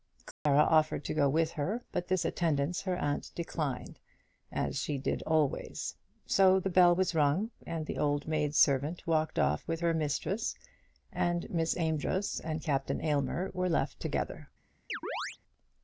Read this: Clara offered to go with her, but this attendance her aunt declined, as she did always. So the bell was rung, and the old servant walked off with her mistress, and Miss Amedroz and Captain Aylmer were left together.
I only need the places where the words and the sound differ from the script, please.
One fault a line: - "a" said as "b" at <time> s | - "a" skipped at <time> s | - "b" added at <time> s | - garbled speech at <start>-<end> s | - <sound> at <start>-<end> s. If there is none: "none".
- dropout at 0.3-0.5 s
- "maid" added at 8.3 s
- chirp at 14.9-15.4 s